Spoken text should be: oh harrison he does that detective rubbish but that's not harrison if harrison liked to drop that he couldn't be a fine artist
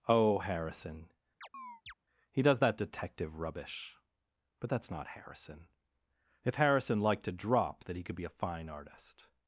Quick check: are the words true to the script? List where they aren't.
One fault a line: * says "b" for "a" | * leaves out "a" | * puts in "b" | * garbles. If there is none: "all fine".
* says "could" for "couldn't"